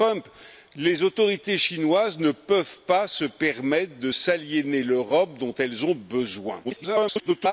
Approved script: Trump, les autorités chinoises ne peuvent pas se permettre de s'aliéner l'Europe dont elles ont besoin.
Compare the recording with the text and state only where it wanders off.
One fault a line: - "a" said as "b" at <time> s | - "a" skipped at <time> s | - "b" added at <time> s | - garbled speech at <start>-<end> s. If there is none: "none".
- garbled speech at 6.6-7.5 s